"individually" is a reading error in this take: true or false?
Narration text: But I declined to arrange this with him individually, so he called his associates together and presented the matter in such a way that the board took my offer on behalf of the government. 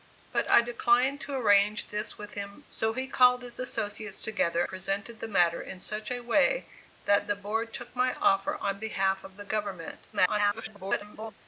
true